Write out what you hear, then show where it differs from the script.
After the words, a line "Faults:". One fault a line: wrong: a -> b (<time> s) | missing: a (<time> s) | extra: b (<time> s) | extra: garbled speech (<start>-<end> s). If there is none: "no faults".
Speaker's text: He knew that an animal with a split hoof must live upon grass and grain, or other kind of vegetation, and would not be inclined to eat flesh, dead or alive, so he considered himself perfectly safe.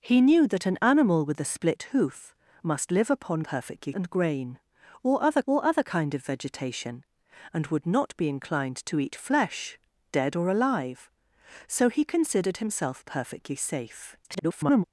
He knew that an animal with a split hoof must live upon perfectly and grain, or other or other kind of vegetation, and would not be inclined to eat flesh, dead or alive, so he considered himself perfectly safe. [garbled]
Faults:
wrong: grass -> perfectly (3.4 s)
extra: or other (5.5 s)
extra: garbled speech (14.2-14.8 s)